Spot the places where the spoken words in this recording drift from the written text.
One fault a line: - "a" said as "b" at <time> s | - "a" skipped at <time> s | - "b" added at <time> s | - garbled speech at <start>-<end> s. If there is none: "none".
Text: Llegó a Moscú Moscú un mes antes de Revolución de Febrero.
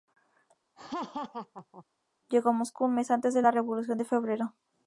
- "Moscú" skipped at 2.8 s
- "la" added at 3.4 s